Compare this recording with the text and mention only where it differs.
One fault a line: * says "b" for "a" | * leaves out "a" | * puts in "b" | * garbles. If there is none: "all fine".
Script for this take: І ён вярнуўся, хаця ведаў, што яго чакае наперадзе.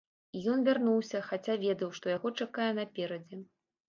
all fine